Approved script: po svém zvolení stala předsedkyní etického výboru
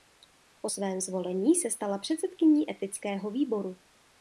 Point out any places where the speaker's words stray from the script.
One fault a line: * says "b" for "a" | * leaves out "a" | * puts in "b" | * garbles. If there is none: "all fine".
* puts in "se"